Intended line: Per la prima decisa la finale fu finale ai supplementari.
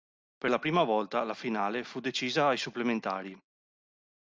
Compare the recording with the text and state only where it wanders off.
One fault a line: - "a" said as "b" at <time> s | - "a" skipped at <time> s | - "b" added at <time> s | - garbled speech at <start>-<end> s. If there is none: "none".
- "decisa" said as "volta" at 0.8 s
- "finale" said as "decisa" at 2.0 s